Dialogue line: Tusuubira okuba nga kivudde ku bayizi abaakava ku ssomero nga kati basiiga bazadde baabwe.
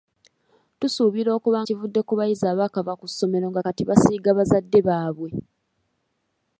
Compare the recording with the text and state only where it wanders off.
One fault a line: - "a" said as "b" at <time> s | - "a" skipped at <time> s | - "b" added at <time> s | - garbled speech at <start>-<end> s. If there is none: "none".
- "nga" skipped at 1.6 s